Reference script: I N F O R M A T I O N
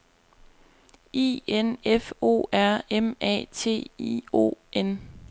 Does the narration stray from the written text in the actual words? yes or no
no